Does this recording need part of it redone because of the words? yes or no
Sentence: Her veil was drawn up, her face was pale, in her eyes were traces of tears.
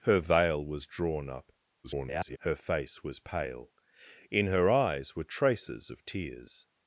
yes